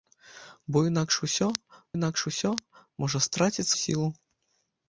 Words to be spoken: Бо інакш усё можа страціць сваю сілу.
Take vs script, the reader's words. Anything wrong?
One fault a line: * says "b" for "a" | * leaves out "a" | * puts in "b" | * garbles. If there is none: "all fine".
* puts in "інакш усё"
* leaves out "сваю"